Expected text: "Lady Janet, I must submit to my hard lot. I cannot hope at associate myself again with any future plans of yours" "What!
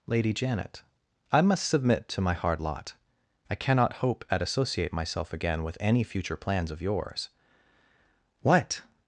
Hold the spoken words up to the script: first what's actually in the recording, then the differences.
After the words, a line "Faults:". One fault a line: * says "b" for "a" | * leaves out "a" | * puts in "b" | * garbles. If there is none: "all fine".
"Lady Janet, I must submit to my hard lot. I cannot hope at associate myself again with any future plans of yours" "What!
Faults:
all fine